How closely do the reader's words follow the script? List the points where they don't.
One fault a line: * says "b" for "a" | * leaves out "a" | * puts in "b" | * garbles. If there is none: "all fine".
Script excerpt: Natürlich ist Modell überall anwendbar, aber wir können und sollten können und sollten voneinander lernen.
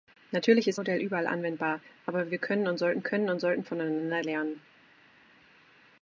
all fine